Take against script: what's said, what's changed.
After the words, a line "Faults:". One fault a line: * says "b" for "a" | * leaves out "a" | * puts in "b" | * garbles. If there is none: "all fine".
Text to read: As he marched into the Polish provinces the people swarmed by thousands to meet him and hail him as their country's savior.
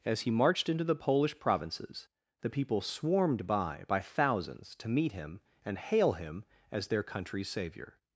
As he marched into the Polish provinces the people swarmed by by thousands to meet him and hail him as their country's savior.
Faults:
* puts in "by"